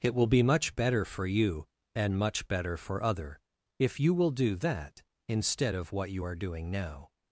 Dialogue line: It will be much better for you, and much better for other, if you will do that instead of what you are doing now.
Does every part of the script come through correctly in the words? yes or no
yes